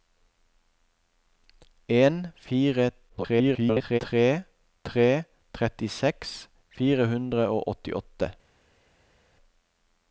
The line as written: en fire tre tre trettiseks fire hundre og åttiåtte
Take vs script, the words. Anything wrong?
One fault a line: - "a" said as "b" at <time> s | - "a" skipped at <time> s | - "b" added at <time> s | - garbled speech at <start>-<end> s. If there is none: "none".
- garbled speech at 3.1-4.0 s